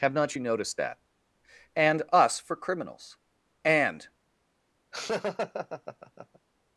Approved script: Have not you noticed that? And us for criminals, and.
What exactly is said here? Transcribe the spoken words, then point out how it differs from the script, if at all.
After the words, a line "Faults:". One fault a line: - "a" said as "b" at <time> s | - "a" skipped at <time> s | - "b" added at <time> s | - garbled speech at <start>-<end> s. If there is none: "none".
Have not you noticed that? And us for criminals, and.
Faults:
none